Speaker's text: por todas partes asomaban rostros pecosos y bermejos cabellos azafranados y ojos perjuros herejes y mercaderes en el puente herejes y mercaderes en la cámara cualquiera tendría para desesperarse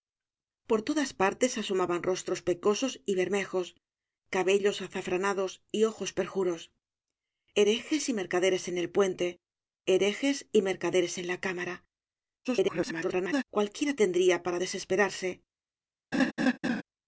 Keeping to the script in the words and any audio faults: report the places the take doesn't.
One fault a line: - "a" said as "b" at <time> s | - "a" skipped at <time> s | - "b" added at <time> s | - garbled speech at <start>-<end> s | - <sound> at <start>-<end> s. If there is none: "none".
- garbled speech at 12.4-13.4 s
- laugh at 16.1-16.8 s